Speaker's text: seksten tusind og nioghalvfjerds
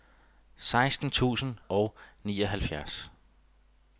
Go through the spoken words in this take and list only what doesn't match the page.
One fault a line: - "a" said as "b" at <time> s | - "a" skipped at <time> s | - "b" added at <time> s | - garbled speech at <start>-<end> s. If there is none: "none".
none